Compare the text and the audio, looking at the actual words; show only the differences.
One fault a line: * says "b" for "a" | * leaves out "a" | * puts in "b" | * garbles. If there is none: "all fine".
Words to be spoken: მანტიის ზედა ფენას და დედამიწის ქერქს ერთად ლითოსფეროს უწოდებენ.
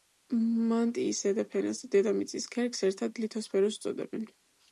all fine